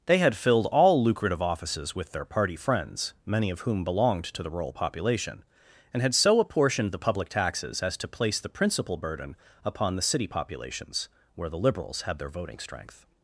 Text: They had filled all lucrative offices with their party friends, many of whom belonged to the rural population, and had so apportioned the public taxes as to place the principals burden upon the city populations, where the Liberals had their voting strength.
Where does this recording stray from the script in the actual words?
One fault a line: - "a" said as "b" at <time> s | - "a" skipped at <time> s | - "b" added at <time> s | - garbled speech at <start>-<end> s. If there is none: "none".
- "principals" said as "principal" at 8.5 s